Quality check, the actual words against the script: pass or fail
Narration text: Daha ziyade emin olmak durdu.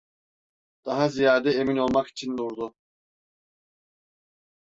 fail